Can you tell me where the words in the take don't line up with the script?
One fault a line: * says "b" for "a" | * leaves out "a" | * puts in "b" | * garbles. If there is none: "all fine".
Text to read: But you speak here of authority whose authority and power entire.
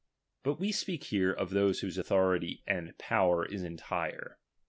* says "we" for "you"
* says "those" for "authority"
* puts in "is"